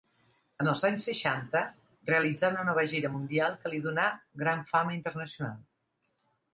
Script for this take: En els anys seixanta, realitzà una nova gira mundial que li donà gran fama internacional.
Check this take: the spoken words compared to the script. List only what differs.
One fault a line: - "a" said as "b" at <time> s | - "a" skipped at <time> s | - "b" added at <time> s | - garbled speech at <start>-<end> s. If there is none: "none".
none